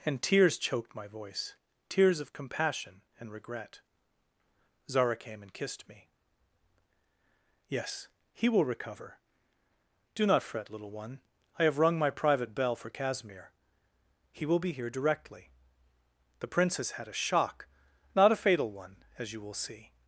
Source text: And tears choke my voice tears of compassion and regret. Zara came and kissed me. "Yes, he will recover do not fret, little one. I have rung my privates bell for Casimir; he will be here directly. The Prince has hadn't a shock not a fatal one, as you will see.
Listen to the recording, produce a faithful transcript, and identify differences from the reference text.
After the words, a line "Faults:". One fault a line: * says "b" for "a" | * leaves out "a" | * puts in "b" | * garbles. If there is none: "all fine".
And tears choked my voice tears of compassion and regret. Zara came and kissed me. "Yes, he will recover do not fret, little one. I have rung my private bell for Casimir; he will be here directly. The Prince has had a shock not a fatal one, as you will see.
Faults:
* says "choked" for "choke"
* says "private" for "privates"
* says "had" for "hadn't"